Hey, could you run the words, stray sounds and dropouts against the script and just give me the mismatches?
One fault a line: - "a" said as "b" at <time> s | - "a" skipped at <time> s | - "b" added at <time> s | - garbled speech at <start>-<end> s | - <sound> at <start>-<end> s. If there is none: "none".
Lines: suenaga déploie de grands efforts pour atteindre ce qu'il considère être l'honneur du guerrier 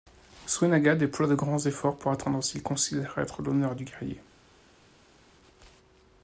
none